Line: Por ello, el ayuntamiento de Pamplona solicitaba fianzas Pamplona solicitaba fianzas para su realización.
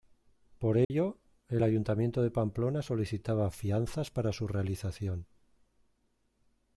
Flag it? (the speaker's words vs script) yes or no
yes